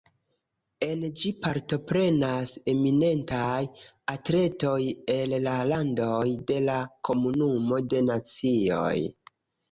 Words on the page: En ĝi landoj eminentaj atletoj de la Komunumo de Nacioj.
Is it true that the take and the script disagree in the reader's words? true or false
true